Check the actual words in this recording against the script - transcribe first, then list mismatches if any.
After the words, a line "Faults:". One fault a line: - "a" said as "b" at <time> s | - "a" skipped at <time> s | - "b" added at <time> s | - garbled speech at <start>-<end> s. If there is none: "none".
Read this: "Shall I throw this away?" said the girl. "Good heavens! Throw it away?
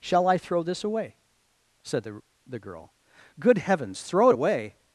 "Shall I throw this away?" said the the girl. "Good heavens! Throw it away?
Faults:
- "the" added at 2.5 s